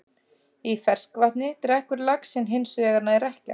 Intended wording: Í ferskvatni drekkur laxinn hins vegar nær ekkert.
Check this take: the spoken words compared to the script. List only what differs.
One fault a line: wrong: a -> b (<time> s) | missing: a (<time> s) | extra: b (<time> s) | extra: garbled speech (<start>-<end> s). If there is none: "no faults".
no faults